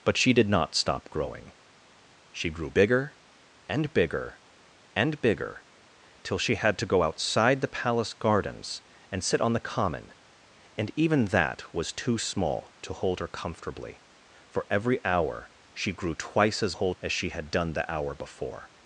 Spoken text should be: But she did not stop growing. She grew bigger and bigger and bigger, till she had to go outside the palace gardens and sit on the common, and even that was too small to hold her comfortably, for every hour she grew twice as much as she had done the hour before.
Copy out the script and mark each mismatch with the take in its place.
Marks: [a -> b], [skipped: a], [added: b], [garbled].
But she did not stop growing. She grew bigger and bigger and bigger, till she had to go outside the palace gardens and sit on the common, and even that was too small to hold her comfortably, for every hour she grew twice as [much -> hold] as she had done the hour before.